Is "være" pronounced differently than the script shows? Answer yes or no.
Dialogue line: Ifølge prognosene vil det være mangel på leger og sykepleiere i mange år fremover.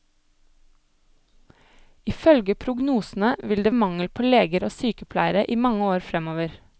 yes